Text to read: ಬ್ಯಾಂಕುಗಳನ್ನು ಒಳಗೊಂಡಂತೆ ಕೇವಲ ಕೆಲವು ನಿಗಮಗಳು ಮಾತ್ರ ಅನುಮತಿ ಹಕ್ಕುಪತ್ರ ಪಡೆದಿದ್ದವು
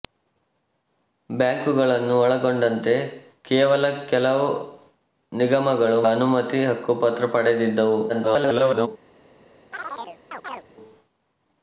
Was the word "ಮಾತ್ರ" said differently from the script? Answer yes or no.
yes